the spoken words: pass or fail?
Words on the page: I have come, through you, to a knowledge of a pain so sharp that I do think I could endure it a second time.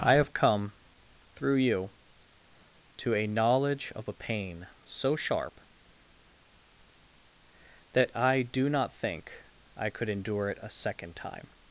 fail